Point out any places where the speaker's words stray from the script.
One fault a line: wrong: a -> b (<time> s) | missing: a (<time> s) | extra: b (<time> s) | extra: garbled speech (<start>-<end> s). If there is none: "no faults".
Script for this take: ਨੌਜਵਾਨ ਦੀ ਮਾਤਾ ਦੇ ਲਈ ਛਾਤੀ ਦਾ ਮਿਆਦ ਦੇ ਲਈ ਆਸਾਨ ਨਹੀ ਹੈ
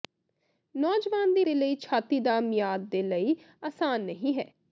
missing: ਮਾਤਾ (1.4 s)